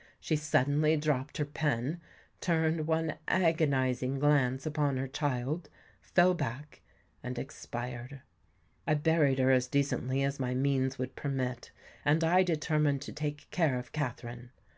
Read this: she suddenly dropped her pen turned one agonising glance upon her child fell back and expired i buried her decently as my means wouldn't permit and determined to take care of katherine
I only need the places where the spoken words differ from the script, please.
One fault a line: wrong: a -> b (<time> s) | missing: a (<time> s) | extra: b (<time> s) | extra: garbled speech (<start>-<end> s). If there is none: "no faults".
extra: as (9.5 s)
wrong: wouldn't -> would (11.0 s)
extra: i (12.2 s)